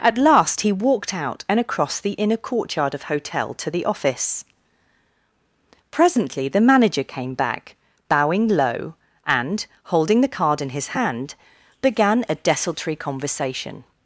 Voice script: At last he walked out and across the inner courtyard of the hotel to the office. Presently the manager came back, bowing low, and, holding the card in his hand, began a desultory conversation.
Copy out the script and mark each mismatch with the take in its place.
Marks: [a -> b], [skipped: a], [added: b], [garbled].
At last he walked out and across the inner courtyard of [skipped: the] hotel to the office. Presently the manager came back, bowing low, and, holding the card in his hand, began a desultory conversation.